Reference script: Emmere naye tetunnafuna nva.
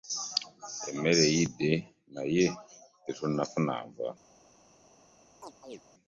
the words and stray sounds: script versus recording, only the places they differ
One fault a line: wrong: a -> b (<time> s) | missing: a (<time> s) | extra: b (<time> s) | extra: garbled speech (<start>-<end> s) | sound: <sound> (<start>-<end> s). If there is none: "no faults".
extra: eyidde (1.3 s)
sound: chirp (5.4-5.8 s)